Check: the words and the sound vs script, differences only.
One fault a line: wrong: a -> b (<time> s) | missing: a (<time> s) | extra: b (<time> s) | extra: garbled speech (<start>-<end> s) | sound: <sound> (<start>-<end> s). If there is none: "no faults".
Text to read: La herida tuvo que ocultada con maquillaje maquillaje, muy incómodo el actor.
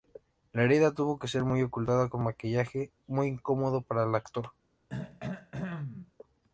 extra: ser (1.3 s)
missing: maquillaje (2.9 s)
extra: para (3.8 s)
sound: throat clearing (4.9-6.1 s)